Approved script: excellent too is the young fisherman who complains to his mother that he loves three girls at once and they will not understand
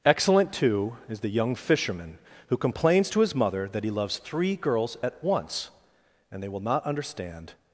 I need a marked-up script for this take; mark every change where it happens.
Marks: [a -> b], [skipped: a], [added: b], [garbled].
excellent too is the young fisherman who complains to his mother that he loves three girls at once and they will not understand